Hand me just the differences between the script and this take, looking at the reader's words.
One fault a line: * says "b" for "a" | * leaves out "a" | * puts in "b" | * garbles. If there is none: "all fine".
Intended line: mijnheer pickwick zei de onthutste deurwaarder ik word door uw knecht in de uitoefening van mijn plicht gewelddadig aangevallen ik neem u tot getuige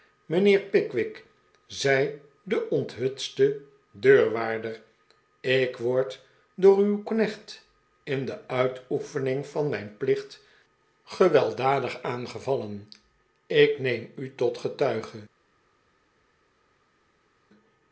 all fine